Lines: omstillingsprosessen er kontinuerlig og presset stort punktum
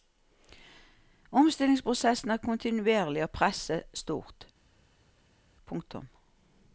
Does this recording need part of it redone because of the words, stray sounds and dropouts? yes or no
no